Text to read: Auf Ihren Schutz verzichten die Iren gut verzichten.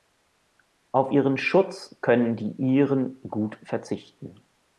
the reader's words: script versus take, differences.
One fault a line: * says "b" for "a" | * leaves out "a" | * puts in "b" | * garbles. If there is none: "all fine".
* says "können" for "verzichten"